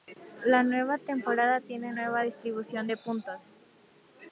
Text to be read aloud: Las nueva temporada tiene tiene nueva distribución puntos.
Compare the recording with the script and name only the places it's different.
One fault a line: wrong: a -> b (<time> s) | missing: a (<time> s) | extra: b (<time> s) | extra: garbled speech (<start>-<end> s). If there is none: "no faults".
wrong: Las -> La (0.4 s)
missing: tiene (1.9 s)
extra: de (2.8 s)